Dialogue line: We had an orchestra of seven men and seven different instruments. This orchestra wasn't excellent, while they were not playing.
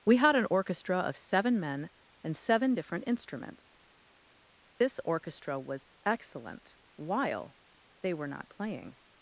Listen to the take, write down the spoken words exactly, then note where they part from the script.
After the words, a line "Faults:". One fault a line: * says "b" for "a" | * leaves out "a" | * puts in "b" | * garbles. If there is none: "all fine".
We had an orchestra of seven men and seven different instruments. This orchestra was excellent, while they were not playing.
Faults:
* says "was" for "wasn't"